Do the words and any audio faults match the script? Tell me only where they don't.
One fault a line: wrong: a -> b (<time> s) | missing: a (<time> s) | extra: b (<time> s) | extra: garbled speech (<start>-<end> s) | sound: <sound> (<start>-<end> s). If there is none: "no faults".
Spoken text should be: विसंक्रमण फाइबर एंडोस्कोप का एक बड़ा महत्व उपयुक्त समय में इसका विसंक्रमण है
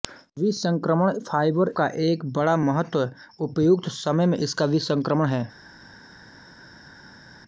missing: एंडोस्कोप (1.7 s)